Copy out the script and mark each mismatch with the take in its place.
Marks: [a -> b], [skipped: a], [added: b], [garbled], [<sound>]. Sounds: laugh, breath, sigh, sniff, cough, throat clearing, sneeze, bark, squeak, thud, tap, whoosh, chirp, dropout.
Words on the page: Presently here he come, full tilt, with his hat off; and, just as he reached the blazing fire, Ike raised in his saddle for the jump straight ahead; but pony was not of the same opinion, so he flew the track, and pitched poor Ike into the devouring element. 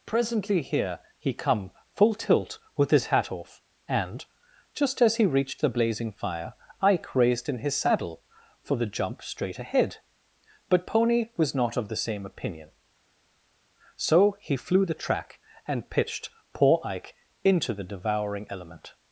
Presently here he come, full tilt, with his hat off; and, just as he reached the blazing fire, Ike raised in his saddle for the jump straight ahead; but pony was not of the same opinion, so he flew the track, and pitched poor Ike into the devouring element.